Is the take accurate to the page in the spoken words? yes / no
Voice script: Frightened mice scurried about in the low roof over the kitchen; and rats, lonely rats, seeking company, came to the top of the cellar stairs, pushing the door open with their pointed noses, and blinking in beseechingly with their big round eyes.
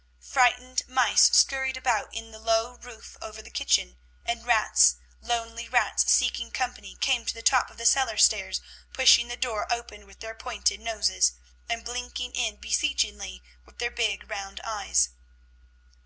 yes